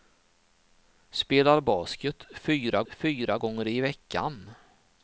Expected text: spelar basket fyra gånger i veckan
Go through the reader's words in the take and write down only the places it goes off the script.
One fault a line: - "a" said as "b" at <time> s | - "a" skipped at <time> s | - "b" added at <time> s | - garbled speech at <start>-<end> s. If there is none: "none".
- "fyra" added at 2.9 s